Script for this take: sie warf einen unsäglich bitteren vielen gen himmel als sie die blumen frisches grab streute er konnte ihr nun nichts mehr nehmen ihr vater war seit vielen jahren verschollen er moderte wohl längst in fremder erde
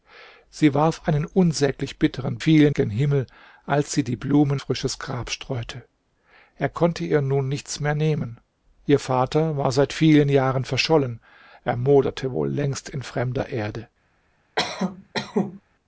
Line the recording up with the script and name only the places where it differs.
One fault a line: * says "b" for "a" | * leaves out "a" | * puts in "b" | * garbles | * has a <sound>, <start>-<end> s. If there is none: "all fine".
* has a cough, 14.6-15.6 s